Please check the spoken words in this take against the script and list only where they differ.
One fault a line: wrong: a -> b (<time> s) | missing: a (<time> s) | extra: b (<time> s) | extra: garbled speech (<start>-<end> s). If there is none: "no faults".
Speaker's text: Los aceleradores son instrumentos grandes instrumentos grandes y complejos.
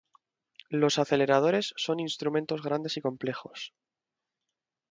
missing: instrumentos grandes (3.0 s)